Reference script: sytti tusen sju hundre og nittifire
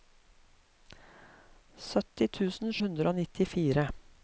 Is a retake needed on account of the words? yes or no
yes